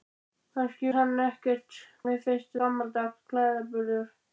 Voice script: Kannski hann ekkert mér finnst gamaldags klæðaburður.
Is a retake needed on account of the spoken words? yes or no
no